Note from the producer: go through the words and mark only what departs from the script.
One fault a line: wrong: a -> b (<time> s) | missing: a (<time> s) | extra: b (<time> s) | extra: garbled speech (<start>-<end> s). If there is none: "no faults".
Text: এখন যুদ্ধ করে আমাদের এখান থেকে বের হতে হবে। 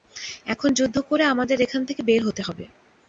no faults